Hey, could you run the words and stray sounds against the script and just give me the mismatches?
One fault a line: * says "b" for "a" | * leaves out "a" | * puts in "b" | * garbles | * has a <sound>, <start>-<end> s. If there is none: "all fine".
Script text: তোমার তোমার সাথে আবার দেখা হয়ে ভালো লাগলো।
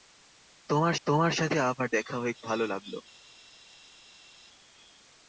all fine